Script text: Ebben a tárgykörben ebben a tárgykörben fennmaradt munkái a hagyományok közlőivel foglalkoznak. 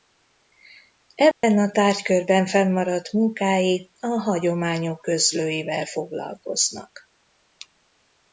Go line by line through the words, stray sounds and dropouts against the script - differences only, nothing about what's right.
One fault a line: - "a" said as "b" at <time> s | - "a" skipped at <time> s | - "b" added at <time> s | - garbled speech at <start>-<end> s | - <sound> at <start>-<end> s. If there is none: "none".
- dropout at 1.3-1.4 s
- "ebben a tárgykörben" skipped at 2.5 s